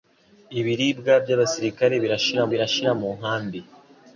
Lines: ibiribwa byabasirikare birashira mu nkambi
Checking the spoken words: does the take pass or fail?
fail